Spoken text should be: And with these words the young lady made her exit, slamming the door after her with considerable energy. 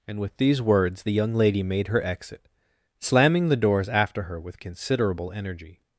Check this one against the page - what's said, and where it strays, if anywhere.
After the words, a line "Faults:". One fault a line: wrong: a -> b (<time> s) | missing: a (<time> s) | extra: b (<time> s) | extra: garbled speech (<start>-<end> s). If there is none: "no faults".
And with these words the young lady made her exit, slamming the doors after her with considerable energy.
Faults:
wrong: door -> doors (3.6 s)